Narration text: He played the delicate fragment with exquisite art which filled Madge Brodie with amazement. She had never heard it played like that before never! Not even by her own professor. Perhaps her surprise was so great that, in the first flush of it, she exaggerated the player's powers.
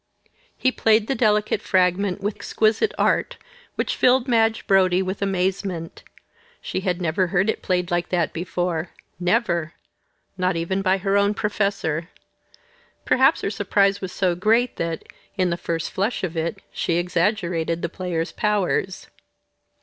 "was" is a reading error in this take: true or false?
false